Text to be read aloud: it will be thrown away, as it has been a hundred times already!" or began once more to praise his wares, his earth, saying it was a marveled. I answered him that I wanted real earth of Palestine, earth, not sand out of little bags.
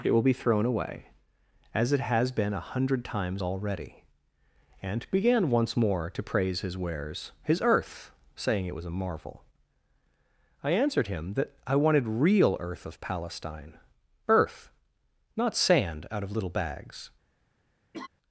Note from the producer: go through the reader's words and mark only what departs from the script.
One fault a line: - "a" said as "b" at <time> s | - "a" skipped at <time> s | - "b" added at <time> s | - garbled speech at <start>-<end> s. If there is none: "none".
- "or" said as "and" at 4.8 s
- "marveled" said as "marvel" at 8.9 s